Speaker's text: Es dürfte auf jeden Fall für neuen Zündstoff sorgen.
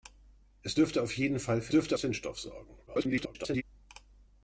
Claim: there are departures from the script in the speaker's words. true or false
true